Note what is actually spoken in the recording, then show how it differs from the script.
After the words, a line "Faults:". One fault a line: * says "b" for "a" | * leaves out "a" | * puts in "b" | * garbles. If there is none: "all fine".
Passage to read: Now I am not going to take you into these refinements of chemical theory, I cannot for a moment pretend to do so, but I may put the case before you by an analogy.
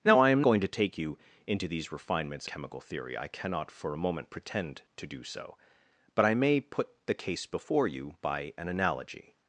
Now I am going to take you into these refinements chemical theory, I cannot for a moment pretend to do so, but I may put the case before you by an analogy.
Faults:
* leaves out "not"
* leaves out "of"